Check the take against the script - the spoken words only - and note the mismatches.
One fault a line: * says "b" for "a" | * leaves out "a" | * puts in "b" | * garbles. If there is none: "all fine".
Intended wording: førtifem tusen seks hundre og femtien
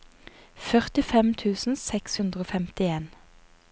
all fine